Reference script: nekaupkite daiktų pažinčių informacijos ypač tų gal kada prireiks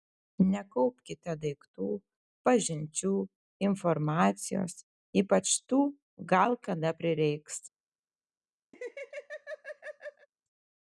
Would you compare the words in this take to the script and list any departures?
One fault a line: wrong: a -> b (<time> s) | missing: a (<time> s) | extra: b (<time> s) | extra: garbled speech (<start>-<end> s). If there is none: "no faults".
no faults